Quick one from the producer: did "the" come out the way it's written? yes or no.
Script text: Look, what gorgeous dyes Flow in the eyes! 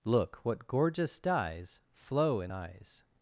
no